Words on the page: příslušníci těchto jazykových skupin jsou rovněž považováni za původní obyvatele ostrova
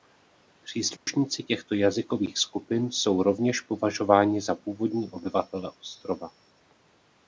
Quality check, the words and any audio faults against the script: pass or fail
fail